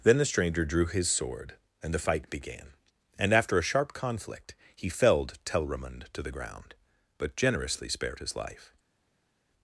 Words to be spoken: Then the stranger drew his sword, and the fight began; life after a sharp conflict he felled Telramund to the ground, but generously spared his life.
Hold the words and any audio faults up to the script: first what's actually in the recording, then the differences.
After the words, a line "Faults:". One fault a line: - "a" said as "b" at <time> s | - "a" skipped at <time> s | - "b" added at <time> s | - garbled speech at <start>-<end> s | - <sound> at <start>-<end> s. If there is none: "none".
Then the stranger drew his sword, and the fight began; and after a sharp conflict he felled Telramund to the ground, but generously spared his life.
Faults:
- "life" said as "and" at 3.2 s